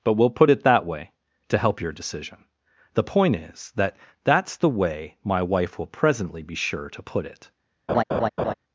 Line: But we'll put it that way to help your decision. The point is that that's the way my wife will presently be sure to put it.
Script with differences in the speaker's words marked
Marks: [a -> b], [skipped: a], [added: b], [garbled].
But we'll put it that way to help your decision. The point is that that's the way my wife will presently be sure to put it.